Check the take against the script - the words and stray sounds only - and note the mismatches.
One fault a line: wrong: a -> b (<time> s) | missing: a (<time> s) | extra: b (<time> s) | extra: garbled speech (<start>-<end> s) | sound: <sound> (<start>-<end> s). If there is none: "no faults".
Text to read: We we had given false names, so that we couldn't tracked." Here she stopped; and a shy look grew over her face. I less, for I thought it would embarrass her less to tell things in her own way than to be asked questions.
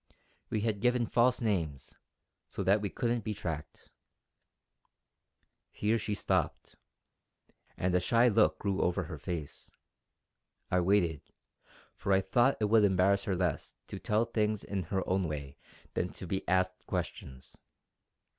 missing: we (0.6 s)
extra: be (3.2 s)
wrong: less -> waited (10.8 s)